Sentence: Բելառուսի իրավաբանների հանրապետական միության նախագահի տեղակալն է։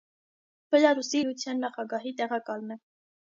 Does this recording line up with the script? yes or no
no